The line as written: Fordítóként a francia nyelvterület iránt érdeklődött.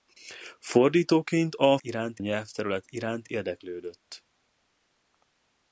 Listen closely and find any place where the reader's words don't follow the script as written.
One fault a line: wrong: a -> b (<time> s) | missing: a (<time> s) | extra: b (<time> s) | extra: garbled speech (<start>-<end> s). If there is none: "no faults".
wrong: francia -> iránt (1.8 s)